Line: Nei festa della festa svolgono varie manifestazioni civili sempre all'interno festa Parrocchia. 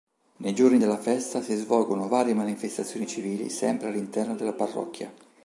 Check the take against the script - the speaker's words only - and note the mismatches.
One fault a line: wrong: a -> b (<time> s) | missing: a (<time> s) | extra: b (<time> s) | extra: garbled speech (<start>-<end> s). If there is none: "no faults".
wrong: festa -> giorni (0.6 s)
extra: si (1.4 s)
wrong: festa -> della (4.3 s)